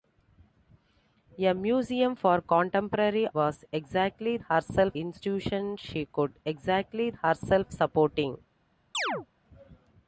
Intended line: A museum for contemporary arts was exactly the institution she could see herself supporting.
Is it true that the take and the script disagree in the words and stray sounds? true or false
true